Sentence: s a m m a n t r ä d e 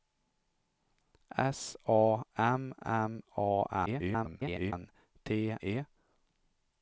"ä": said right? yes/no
no